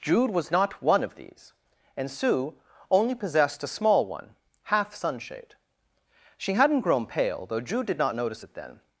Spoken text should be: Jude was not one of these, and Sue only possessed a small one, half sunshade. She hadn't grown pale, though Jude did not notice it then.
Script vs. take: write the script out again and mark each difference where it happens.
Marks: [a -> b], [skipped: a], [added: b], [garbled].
Jude was not one of these, and Sue only possessed a small one, half sunshade. She hadn't grown pale, though Jude did not notice it then.